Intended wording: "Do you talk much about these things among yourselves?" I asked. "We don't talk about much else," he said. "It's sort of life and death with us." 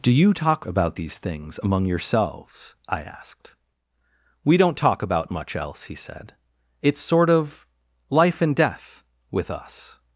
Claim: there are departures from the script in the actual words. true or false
true